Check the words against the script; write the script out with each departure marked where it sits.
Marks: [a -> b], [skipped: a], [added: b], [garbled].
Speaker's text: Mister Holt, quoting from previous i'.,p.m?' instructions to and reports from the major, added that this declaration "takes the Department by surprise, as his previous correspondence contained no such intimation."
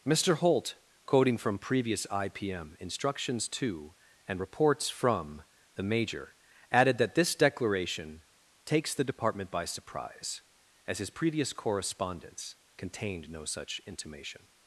Mister Holt, quoting from previous i'.,p.m?' instructions to and reports from the major, added that this declaration "takes the Department by surprise, as his previous correspondence contained no such intimation."